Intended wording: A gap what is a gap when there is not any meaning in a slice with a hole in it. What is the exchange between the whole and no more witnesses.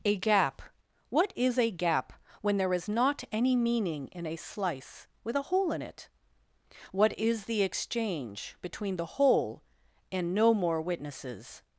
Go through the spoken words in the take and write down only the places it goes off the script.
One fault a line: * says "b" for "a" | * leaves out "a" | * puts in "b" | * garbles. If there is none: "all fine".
all fine